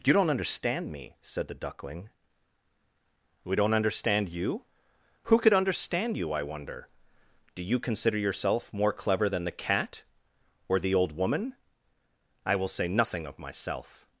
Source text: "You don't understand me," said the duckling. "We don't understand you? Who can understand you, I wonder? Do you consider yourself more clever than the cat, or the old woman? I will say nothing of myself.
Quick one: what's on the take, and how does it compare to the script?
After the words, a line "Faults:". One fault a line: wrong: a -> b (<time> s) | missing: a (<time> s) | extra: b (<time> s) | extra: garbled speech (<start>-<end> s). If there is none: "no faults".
"You don't understand me," said the duckling. "We don't understand you? Who could understand you, I wonder? Do you consider yourself more clever than the cat, or the old woman? I will say nothing of myself.
Faults:
wrong: can -> could (5.4 s)